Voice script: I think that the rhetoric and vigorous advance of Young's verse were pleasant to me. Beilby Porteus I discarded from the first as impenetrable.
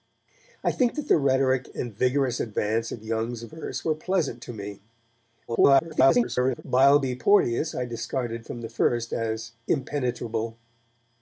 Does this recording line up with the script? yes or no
no